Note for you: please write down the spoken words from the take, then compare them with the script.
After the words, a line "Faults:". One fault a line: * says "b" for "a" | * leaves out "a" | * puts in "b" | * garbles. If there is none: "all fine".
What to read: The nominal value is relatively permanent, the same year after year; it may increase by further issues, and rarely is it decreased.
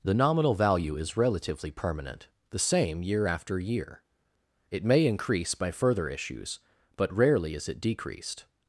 The nominal value is relatively permanent, the same year after year; it may increase by further issues, but rarely is it decreased.
Faults:
* says "but" for "and"